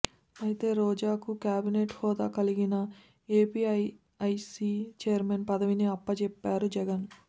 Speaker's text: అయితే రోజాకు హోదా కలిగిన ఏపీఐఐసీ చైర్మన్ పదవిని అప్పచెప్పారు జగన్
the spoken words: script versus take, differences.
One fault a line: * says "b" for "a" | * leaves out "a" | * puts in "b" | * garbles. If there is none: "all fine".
* puts in "కేబినెట్"